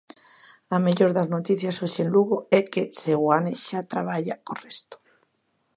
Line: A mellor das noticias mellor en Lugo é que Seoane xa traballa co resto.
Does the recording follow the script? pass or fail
fail